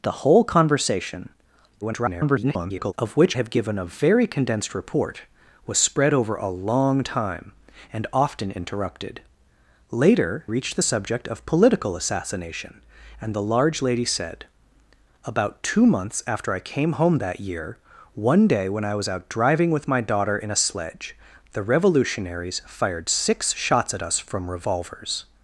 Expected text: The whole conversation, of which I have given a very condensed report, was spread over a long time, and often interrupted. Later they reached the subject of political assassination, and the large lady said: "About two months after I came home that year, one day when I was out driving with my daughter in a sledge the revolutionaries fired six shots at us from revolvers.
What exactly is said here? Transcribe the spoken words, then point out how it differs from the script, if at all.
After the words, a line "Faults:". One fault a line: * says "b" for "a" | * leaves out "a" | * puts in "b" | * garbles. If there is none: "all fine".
The whole conversation, [garbled] of which have given a very condensed report, was spread over a long time, and often interrupted. Later reached the subject of political assassination, and the large lady said: "About two months after I came home that year, one day when I was out driving with my daughter in a sledge the revolutionaries fired six shots at us from revolvers.
Faults:
* garbles
* leaves out "I"
* leaves out "they"